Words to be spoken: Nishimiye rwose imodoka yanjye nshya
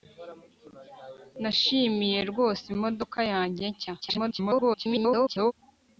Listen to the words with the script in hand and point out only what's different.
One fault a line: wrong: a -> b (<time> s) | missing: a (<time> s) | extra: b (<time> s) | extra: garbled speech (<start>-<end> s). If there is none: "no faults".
extra: garbled speech (4.0-5.5 s)